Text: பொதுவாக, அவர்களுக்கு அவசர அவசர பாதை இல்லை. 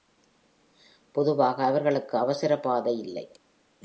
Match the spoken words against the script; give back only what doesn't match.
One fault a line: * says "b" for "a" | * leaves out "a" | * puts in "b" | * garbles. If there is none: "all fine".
* leaves out "அவசர"